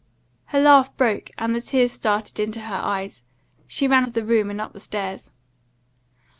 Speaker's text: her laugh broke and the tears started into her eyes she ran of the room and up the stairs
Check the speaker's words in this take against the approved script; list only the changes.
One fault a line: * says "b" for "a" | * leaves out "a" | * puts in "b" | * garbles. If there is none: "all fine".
all fine